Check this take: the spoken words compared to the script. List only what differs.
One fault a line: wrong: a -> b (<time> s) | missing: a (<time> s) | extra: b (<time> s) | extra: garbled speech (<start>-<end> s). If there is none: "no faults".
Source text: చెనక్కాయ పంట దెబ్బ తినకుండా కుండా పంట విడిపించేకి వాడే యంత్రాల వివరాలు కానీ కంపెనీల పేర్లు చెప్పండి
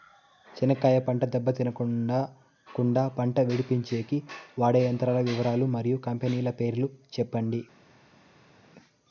wrong: కానీ -> మరియు (5.8 s)